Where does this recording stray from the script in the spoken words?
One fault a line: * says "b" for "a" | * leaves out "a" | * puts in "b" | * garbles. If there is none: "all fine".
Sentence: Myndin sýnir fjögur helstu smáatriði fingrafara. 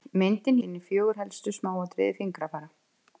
all fine